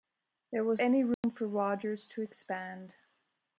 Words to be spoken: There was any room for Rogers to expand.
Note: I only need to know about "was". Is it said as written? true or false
true